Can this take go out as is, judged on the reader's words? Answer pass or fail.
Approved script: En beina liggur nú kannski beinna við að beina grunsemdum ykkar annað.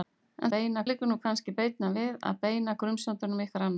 pass